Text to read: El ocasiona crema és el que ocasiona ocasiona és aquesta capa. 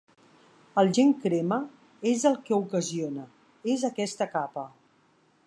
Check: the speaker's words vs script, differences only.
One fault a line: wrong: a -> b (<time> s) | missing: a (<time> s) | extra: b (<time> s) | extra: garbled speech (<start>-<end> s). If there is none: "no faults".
wrong: ocasiona -> gen (1.0 s)
missing: ocasiona (3.3 s)